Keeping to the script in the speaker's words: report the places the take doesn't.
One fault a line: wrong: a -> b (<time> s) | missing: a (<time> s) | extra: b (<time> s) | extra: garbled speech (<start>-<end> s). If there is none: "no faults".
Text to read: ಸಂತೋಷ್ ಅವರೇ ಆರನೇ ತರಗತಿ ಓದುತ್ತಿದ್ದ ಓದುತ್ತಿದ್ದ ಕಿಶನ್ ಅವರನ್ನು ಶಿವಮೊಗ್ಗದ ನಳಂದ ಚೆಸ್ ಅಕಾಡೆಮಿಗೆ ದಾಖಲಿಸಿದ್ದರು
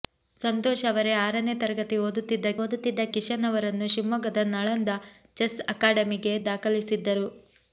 no faults